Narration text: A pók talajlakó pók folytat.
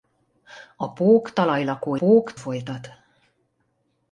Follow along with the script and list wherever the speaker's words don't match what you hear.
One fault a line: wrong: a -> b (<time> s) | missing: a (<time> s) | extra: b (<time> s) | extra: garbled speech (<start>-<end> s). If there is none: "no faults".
no faults